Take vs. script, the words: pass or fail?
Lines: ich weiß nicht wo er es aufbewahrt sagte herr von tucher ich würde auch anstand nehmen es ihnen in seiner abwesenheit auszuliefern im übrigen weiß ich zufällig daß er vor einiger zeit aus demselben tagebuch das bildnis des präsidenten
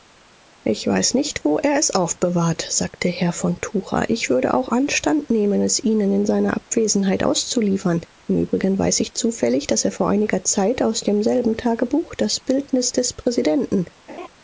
pass